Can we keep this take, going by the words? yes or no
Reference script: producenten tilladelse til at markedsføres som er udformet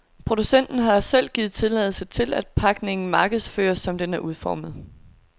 no